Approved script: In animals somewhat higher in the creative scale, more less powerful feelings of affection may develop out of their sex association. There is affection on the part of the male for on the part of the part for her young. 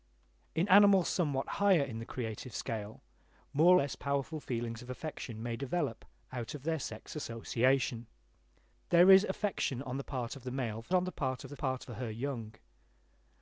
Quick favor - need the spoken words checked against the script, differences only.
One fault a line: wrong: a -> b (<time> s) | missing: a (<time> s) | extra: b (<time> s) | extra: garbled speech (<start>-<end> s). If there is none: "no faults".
no faults